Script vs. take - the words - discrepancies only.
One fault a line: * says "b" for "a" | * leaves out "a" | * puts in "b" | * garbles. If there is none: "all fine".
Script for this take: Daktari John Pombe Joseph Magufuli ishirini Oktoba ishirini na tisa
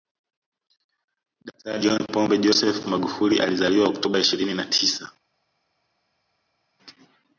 * says "alizaliwa" for "ishirini"